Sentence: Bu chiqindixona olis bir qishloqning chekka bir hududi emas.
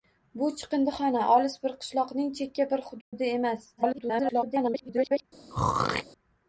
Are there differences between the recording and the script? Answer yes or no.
yes